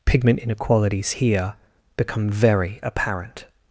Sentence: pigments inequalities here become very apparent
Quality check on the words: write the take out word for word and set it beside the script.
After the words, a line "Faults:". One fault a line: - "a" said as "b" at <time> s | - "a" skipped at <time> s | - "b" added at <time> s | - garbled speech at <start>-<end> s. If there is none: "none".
pigment inequalities here become very apparent
Faults:
- "pigments" said as "pigment" at 0.1 s